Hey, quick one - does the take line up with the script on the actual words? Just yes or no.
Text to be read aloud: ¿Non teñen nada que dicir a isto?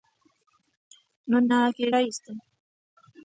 no